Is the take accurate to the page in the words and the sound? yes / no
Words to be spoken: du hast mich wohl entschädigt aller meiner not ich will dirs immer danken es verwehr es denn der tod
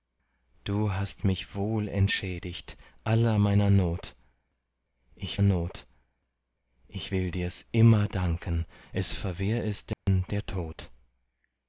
no